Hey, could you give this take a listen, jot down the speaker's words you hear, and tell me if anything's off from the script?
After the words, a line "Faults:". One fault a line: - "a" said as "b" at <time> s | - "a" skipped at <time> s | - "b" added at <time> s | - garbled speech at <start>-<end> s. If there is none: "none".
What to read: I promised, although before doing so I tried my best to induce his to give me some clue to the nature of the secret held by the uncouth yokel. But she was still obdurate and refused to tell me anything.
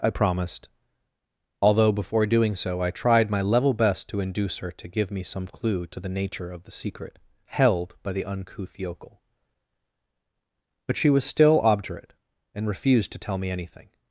I promised, although before doing so I tried my level best to induce her to give me some clue to the nature of the secret held by the uncouth yokel. But she was still obdurate and refused to tell me anything.
Faults:
- "level" added at 3.4 s
- "his" said as "her" at 4.6 s